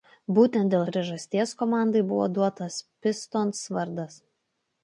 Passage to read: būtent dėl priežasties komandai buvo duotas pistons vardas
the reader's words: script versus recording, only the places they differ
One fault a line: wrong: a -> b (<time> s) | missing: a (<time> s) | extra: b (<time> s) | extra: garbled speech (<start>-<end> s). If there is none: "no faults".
no faults